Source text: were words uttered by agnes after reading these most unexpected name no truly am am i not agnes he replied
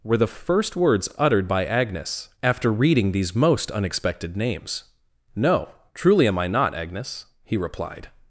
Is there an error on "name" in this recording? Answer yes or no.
yes